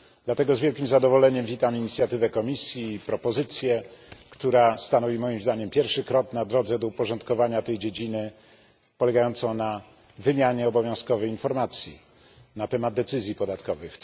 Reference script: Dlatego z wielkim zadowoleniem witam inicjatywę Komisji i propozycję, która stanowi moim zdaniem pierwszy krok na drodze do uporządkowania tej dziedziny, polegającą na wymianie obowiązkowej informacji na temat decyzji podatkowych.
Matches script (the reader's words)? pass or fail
pass